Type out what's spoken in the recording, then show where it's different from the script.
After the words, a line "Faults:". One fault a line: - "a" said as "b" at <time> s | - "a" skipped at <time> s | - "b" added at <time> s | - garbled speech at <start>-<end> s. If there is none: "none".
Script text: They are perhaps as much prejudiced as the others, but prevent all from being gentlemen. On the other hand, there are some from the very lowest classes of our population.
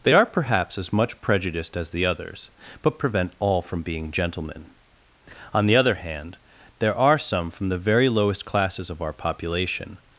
They are perhaps as much prejudiced as the others, but prevent all from being gentlemen. On the other hand, there are some from the very lowest classes of our population.
Faults:
none